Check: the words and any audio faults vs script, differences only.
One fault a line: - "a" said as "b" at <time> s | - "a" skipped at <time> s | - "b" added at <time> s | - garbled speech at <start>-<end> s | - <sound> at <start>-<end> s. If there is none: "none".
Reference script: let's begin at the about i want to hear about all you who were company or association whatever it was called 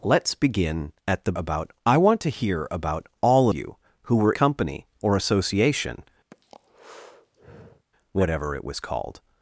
- breath at 6.3-7.9 s